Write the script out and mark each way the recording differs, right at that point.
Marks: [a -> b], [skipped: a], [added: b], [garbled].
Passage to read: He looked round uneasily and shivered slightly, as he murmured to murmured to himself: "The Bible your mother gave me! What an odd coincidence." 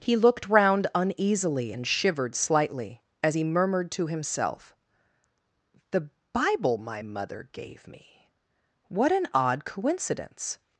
He looked round uneasily and shivered slightly, as he murmured to [skipped: murmured to] himself: "The Bible [your -> my] mother gave me! What an odd coincidence."